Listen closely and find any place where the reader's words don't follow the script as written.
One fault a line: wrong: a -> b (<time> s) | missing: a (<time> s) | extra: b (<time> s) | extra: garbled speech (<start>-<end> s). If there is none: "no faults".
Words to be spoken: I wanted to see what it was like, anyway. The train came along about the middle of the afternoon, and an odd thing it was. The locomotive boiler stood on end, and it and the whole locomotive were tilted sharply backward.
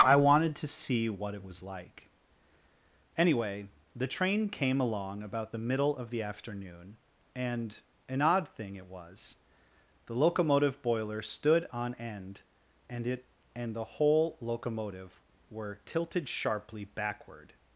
no faults